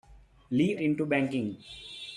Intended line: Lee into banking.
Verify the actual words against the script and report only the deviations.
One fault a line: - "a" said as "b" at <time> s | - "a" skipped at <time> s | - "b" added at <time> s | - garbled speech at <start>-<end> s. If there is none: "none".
none